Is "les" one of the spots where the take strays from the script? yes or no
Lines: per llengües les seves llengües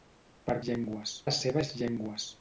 no